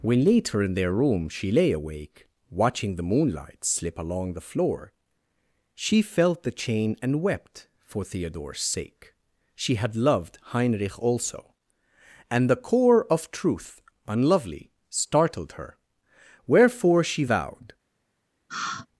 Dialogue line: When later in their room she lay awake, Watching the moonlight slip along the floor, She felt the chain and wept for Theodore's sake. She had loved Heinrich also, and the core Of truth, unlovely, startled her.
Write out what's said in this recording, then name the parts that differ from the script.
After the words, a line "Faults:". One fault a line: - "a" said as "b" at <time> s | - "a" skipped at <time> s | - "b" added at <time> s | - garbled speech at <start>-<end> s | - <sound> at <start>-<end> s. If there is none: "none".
When later in their room she lay awake, Watching the moonlight slip along the floor, She felt the chain and wept for Theodore's sake. She had loved Heinrich also, and the core Of truth, unlovely, startled her. Wherefore She vowed
Faults:
- "Wherefore She vowed" added at 16.5 s
- sigh at 18.5-18.9 s